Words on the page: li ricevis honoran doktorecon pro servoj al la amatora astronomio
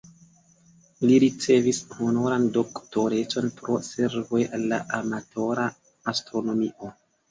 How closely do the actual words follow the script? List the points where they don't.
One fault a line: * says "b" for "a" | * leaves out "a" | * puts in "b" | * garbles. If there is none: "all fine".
all fine